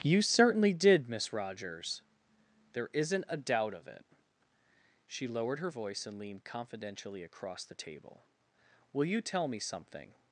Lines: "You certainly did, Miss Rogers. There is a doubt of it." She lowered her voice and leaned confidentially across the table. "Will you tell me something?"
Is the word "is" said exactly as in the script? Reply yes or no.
no